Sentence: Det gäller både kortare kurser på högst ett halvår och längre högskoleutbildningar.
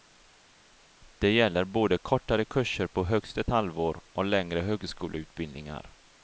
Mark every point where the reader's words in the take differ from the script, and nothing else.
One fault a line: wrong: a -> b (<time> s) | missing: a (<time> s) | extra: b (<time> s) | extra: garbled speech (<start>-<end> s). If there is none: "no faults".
no faults